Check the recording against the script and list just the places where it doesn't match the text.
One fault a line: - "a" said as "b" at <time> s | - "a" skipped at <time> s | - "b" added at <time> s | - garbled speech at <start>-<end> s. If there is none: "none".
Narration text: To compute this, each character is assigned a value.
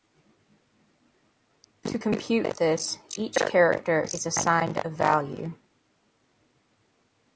none